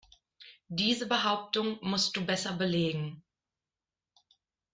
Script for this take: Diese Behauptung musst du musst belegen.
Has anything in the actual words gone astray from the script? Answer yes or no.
yes